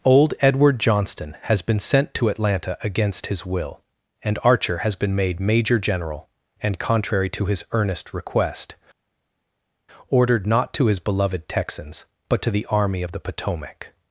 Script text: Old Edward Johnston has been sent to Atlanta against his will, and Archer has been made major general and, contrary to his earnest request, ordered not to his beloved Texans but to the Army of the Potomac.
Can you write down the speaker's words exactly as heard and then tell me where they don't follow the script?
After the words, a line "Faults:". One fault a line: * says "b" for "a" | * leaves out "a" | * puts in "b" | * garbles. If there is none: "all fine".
Old Edward Johnston has been sent to Atlanta against his will, and Archer has been made major general and, contrary to his earnest request, ordered not to his beloved Texans but to the Army of the Potomac.
Faults:
all fine